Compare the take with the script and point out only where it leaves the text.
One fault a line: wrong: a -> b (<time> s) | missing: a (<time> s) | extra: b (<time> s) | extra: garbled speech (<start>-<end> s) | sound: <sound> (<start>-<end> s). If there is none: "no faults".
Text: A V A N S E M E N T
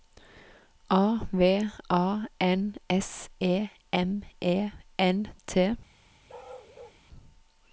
sound: bark (6.3-7.0 s)